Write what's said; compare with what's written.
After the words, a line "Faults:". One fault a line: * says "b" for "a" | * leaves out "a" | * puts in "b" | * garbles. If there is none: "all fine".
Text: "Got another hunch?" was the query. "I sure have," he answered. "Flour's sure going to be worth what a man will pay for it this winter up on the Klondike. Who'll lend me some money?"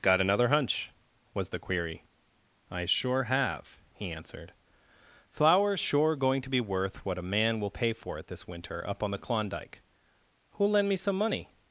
"Got another hunch?" was the query. "I sure have," he answered. "Flour's sure going to be worth what a man will pay for it this winter up on the Klondike. Who'll lend me some money?"
Faults:
all fine